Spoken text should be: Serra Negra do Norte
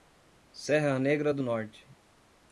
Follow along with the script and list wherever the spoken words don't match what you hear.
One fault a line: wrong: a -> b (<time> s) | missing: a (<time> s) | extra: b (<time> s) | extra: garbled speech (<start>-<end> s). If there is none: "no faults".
no faults